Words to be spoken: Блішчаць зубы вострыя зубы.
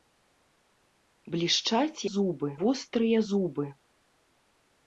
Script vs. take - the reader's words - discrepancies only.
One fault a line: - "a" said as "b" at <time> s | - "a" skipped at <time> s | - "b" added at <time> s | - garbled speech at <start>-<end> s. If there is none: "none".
none